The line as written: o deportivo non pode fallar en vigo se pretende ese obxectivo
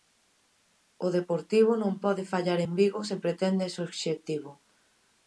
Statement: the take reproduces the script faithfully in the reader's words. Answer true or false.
true